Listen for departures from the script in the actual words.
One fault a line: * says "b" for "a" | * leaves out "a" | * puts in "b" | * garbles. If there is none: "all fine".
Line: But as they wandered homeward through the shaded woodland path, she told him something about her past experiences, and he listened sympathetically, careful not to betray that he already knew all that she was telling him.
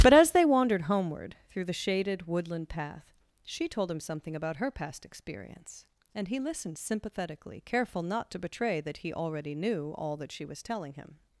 * says "experience" for "experiences"